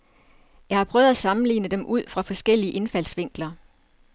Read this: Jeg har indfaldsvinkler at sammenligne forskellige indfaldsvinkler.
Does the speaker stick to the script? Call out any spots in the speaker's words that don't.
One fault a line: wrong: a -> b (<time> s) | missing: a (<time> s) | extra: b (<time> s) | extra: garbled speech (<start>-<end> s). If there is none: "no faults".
wrong: indfaldsvinkler -> prøvet (0.8 s)
extra: dem ud fra (1.7 s)